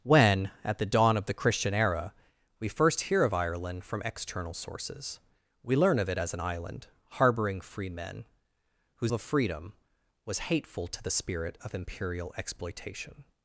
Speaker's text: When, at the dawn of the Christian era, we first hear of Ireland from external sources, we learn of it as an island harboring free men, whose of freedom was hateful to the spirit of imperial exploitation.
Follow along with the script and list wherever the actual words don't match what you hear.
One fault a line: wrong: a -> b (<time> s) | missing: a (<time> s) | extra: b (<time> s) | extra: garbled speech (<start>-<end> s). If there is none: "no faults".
no faults